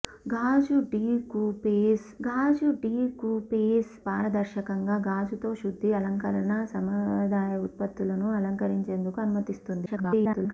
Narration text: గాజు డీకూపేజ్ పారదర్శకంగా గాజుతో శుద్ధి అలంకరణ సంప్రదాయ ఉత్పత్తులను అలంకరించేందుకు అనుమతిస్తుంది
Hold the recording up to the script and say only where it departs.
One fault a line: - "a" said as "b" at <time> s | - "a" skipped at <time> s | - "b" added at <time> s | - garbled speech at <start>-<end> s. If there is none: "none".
- "గాజు డీకూపేజ్" added at 2.2 s
- garbled speech at 9.9-10.5 s